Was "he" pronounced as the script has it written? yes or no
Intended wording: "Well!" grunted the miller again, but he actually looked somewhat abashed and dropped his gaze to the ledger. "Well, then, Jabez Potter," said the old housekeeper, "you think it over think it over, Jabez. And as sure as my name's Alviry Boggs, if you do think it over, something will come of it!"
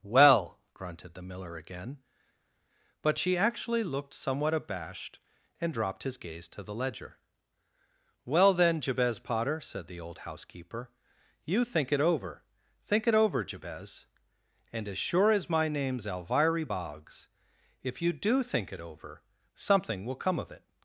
no